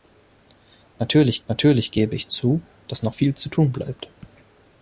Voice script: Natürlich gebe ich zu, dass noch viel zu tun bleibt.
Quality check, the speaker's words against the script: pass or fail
fail